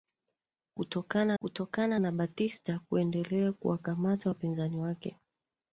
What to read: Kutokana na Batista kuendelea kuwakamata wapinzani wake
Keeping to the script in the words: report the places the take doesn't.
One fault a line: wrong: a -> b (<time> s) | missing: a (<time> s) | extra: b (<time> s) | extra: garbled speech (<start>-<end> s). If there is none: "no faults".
extra: kutokana (1.4 s)